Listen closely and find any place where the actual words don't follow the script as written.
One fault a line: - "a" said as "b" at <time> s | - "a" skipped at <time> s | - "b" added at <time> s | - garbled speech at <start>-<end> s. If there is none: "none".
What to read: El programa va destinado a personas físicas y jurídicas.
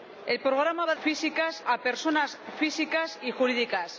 - "destinado" said as "físicas" at 1.0 s